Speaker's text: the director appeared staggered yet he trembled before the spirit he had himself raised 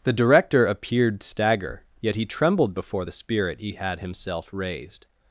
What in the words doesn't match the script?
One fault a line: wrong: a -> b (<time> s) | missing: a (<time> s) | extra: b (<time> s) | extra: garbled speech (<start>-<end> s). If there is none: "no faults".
wrong: staggered -> stagger (1.2 s)